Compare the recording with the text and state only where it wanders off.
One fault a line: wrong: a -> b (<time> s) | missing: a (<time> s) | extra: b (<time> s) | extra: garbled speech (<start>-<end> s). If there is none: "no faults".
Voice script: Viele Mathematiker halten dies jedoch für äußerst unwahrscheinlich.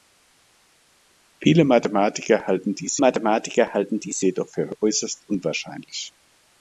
extra: Mathematiker halten dies (3.0 s)